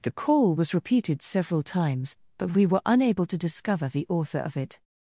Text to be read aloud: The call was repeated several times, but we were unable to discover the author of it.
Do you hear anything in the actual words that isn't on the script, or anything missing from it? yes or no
no